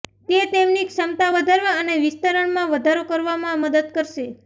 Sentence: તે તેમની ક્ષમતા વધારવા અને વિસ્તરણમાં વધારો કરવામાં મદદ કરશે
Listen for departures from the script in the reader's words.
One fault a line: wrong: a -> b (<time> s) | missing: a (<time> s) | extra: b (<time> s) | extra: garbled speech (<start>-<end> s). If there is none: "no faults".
no faults